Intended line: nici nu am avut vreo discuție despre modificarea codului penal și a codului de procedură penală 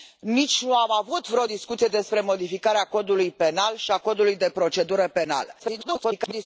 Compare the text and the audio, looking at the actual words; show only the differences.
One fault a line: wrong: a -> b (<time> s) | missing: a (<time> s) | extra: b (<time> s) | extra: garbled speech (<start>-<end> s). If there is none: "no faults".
extra: garbled speech (5.6-6.5 s)